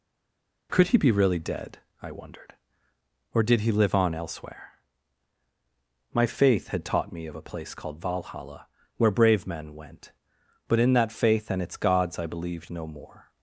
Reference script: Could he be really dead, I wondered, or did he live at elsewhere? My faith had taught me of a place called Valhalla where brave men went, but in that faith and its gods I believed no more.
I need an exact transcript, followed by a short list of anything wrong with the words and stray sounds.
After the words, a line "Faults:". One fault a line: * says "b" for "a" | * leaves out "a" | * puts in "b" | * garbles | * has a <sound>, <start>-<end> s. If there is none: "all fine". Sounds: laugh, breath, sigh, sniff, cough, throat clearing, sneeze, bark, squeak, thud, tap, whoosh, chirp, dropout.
Could he be really dead, I wondered, or did he live on elsewhere? My faith had taught me of a place called Valhalla where brave men went, but in that faith and its gods I believed no more.
Faults:
* says "on" for "at"